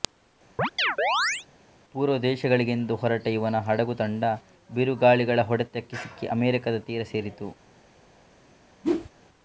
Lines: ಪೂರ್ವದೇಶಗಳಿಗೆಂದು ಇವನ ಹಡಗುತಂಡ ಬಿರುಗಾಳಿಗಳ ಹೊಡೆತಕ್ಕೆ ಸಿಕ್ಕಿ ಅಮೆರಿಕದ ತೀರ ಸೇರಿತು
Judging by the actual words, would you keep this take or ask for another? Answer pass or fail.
fail